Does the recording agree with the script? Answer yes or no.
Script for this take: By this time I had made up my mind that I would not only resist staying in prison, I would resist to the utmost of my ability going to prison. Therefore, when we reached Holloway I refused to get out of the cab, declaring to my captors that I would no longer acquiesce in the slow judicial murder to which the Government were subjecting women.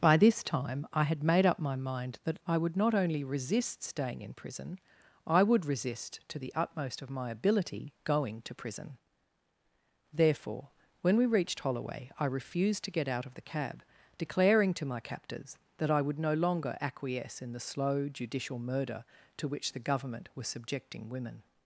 no